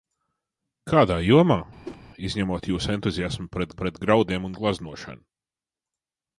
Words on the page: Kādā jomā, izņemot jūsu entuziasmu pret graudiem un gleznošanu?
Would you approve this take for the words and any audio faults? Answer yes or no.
no